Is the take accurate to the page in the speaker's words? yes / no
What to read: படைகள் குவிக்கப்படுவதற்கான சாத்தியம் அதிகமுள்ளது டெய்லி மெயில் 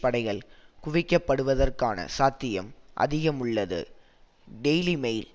yes